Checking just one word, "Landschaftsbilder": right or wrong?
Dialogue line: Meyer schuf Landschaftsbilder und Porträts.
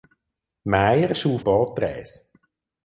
wrong